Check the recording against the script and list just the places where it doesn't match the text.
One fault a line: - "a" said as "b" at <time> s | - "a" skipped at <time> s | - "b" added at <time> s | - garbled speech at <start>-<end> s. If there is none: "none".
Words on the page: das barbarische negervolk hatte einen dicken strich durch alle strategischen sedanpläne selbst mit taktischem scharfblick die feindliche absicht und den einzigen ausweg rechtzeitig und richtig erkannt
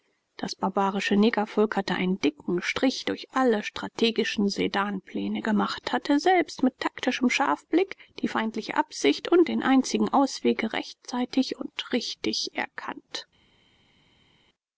- "gemacht hatte" added at 5.4 s